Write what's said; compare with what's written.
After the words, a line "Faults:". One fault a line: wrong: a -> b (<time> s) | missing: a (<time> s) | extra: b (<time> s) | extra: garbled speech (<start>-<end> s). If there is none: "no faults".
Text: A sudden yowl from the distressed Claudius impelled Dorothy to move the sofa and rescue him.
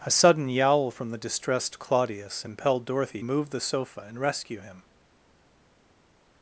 A sudden yowl from the distressed Claudius impelled Dorothy move the sofa and rescue him.
Faults:
missing: to (3.2 s)